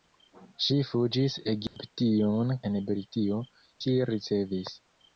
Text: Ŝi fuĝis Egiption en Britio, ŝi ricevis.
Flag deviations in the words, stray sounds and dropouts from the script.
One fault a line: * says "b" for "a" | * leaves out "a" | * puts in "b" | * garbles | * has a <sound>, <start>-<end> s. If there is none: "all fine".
* has a dropout, 1.7-1.8 s